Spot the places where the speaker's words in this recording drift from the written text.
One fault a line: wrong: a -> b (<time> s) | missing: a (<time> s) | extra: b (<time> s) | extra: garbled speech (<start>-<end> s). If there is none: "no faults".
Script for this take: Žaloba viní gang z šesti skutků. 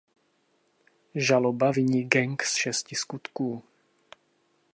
no faults